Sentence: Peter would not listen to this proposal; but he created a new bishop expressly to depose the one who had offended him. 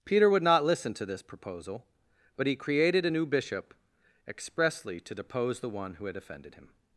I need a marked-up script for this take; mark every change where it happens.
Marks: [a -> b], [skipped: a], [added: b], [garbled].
Peter would not listen to this proposal; but he created a new bishop expressly to depose the one who had offended him.